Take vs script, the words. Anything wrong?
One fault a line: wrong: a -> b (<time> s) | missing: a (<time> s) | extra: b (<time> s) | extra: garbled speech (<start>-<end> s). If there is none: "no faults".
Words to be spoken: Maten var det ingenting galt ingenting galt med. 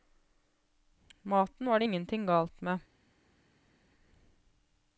missing: ingenting galt (2.6 s)